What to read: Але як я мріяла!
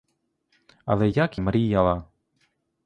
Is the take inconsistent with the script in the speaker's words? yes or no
yes